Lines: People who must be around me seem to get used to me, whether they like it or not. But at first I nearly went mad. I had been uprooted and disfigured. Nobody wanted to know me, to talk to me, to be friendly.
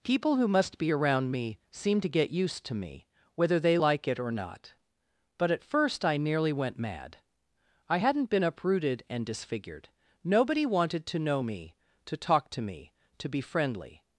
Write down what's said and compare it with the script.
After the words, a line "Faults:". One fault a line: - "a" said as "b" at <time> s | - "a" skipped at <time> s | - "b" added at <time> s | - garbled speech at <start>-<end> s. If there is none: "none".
People who must be around me seem to get used to me, whether they like it or not. But at first I nearly went mad. I hadn't been uprooted and disfigured. Nobody wanted to know me, to talk to me, to be friendly.
Faults:
- "had" said as "hadn't" at 8.0 s